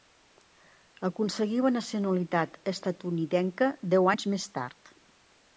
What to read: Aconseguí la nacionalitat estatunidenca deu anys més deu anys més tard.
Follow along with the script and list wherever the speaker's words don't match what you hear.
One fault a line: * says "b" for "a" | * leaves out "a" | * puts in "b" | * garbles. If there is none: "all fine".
* leaves out "deu anys més"